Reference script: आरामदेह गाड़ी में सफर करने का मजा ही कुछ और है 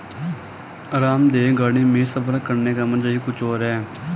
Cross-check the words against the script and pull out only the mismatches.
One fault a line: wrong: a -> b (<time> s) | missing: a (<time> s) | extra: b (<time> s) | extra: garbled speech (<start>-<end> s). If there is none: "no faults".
no faults